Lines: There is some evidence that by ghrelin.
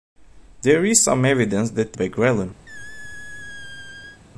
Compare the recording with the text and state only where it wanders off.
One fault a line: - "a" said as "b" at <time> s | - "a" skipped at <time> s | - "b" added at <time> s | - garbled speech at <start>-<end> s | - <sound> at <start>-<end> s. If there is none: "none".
- squeak at 2.7-4.2 s